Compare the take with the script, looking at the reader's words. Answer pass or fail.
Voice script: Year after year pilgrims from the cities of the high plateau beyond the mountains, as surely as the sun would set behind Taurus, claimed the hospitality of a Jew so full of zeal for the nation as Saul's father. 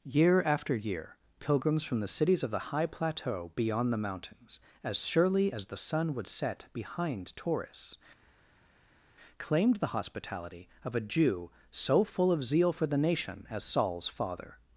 pass